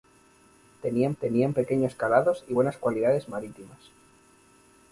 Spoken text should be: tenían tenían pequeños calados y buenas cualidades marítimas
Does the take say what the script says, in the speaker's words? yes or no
yes